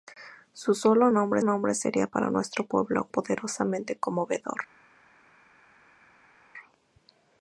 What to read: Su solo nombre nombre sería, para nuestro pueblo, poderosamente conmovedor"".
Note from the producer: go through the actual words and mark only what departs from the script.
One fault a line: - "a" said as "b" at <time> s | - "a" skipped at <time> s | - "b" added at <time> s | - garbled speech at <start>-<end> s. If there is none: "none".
none